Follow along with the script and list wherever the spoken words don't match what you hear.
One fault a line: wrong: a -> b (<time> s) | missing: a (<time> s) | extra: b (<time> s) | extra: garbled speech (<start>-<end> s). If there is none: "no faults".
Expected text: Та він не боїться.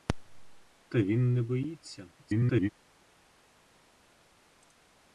extra: garbled speech (2.2-2.7 s)